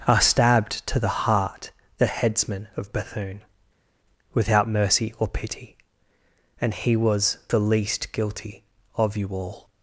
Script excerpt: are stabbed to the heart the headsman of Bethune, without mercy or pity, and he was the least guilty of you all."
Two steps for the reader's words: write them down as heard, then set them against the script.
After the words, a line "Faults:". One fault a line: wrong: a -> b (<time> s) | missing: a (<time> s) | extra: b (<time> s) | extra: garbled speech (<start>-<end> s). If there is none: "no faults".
are stabbed to the heart the headsman of Bethune, without mercy or pity, and he was the least guilty of you all."
Faults:
no faults